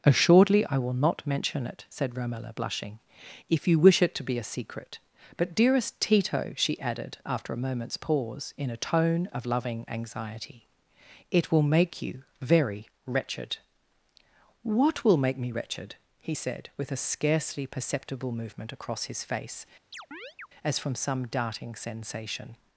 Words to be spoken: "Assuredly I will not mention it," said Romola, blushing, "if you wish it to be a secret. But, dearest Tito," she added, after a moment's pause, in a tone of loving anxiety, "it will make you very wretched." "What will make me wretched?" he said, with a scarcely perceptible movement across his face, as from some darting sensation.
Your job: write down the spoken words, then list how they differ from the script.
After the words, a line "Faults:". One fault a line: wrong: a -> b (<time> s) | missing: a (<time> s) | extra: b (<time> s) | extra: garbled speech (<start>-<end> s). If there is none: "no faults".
"Assuredly I will not mention it," said Romola, blushing, "if you wish it to be a secret. But, dearest Tito," she added, after a moment's pause, in a tone of loving anxiety, "it will make you very wretched." "What will make me wretched?" he said, with a scarcely perceptible movement across his face, as from some darting sensation.
Faults:
no faults